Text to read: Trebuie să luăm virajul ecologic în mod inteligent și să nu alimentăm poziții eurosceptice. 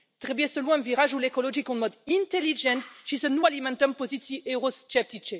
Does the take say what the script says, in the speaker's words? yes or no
yes